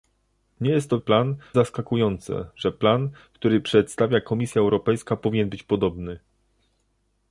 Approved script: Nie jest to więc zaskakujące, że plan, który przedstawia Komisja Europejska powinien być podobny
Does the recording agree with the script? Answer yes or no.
no